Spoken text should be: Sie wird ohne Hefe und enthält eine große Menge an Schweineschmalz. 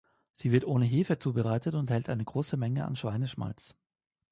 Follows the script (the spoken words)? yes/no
no